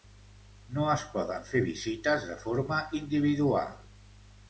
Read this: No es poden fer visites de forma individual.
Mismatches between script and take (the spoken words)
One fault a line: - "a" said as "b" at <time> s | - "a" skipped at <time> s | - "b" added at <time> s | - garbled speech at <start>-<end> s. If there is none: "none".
none